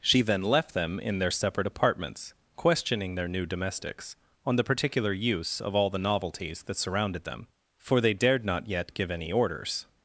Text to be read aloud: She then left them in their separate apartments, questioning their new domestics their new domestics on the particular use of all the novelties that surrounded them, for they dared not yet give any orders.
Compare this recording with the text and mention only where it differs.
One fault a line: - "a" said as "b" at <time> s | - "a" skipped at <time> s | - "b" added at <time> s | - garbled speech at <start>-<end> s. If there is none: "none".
- "their new domestics" skipped at 4.2 s